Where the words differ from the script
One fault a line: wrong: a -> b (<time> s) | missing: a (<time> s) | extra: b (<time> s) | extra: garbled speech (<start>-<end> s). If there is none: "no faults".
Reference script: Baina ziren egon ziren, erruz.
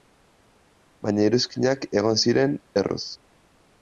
wrong: ziren -> iruzkinak (1.3 s)